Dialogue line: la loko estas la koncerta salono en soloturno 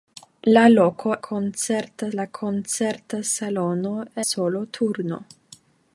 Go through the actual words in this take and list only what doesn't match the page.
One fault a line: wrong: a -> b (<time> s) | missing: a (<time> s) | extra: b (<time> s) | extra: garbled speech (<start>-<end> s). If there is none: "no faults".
wrong: estas -> koncerta (1.3 s)
missing: en (3.9 s)